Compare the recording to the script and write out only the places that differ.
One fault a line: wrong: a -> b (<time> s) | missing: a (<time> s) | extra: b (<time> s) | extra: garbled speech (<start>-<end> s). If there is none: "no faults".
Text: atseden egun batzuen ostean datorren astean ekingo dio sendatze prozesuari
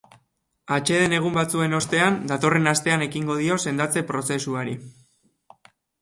no faults